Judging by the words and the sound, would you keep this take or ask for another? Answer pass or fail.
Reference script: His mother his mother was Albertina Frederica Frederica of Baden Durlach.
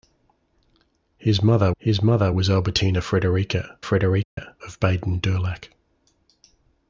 fail